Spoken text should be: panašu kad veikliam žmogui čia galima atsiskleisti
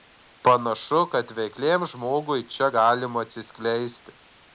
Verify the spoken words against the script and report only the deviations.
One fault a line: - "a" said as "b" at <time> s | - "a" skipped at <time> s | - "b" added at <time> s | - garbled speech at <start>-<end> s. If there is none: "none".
none